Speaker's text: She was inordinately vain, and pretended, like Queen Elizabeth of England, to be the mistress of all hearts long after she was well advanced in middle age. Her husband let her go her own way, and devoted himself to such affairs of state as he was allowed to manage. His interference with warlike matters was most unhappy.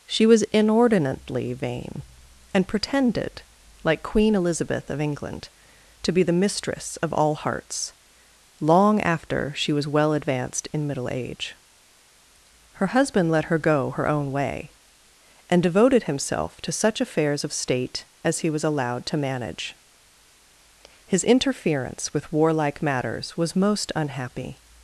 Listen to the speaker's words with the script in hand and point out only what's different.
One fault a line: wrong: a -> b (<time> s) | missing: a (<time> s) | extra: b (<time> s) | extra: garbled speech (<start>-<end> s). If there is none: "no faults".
no faults